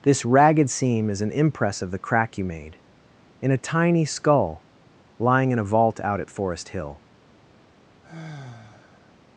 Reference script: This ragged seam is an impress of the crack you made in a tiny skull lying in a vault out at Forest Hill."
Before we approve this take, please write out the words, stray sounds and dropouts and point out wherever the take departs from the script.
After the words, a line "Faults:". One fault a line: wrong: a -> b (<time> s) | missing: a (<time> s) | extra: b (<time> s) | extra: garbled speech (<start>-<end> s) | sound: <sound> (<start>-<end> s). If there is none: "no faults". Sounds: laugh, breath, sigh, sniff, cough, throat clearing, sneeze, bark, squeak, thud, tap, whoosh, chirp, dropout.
This ragged seam is an impress of the crack you made in a tiny skull lying in a vault out at Forest Hill."
Faults:
sound: sigh (8.0-9.2 s)